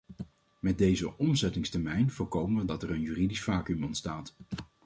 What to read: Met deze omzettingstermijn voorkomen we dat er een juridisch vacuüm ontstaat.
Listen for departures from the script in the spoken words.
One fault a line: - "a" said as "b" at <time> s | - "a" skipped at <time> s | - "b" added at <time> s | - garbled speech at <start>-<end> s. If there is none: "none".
none